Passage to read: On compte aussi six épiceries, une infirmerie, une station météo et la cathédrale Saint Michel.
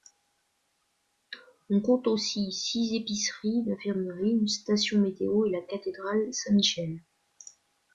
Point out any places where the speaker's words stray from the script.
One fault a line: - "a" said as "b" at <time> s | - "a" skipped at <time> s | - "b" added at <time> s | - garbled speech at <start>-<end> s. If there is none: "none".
none